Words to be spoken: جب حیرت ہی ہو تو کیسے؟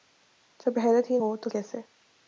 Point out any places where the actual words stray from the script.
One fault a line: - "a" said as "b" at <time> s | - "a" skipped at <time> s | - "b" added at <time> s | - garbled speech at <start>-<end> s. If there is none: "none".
none